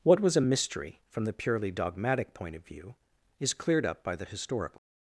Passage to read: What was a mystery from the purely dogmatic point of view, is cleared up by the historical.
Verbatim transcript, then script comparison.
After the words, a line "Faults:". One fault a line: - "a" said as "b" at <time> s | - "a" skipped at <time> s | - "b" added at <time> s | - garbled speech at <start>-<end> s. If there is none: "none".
What was a mystery from the purely dogmatic point of view, is cleared up by the historical.
Faults:
none